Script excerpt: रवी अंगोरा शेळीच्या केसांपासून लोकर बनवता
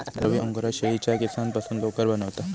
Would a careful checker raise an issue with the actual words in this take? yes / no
no